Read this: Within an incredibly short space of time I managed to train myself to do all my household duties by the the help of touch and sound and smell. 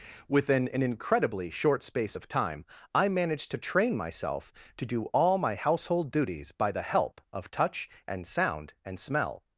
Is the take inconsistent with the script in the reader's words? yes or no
yes